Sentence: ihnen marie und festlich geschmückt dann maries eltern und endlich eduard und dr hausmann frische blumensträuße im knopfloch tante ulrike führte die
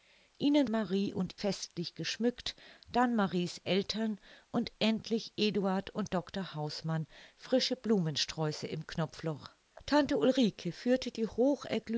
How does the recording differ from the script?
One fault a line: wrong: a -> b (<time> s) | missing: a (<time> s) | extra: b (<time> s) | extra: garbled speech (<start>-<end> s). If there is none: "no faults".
no faults